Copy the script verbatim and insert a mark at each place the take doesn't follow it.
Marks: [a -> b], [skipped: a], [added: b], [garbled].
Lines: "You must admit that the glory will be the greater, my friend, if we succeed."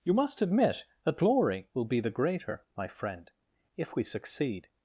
"You must admit that [skipped: the] glory will be the greater, my friend, if we succeed."